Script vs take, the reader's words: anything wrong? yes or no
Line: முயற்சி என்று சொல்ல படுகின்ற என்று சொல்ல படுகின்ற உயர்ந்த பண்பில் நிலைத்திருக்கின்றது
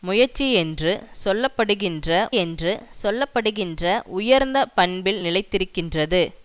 no